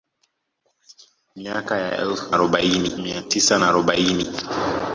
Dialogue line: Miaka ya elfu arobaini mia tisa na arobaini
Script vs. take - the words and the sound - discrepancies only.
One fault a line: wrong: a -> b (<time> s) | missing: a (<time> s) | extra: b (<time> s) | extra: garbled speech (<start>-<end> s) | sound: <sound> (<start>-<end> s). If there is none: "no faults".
no faults